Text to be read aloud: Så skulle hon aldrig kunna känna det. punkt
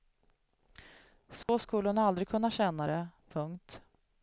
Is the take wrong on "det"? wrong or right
right